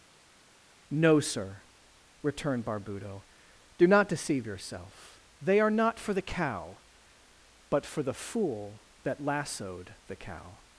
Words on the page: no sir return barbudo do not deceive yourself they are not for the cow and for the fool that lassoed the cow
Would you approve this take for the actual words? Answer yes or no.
no